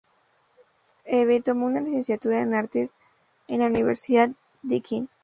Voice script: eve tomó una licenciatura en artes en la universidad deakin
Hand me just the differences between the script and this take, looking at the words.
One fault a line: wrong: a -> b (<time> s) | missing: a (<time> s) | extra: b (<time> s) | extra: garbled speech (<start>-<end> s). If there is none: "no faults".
no faults